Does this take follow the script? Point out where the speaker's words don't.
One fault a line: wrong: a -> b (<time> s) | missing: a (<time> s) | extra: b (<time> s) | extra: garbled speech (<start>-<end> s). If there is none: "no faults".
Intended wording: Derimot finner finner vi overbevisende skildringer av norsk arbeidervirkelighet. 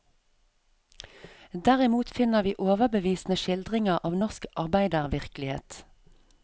missing: finner (2.4 s)